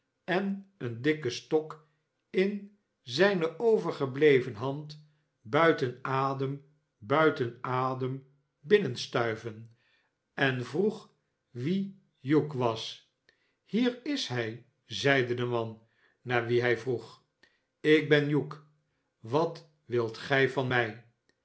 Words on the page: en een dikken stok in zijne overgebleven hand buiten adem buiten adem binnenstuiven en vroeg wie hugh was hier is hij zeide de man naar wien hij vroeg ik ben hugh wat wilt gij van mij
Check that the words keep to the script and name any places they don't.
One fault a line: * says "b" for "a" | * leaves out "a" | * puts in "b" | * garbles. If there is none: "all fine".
all fine